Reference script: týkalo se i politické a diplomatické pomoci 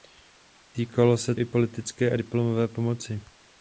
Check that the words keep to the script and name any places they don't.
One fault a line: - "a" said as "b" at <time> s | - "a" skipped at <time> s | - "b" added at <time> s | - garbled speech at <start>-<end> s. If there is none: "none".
none